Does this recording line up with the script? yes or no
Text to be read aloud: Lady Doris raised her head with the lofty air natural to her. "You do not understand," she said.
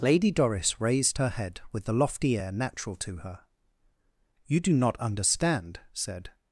no